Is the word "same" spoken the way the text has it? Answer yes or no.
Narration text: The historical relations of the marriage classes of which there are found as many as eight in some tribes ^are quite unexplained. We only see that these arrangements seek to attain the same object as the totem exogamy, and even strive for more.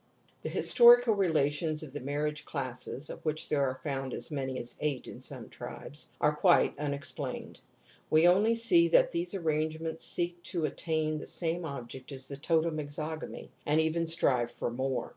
yes